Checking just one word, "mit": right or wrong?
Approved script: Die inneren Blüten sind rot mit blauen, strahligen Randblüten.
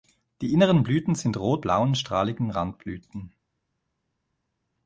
wrong